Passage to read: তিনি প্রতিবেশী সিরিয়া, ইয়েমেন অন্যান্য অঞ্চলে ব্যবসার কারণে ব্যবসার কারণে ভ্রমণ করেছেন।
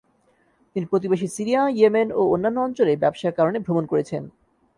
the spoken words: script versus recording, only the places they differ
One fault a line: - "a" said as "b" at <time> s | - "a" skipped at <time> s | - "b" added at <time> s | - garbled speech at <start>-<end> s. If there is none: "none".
- "ও" added at 2.1 s
- "ব্যবসার কারণে" skipped at 3.6 s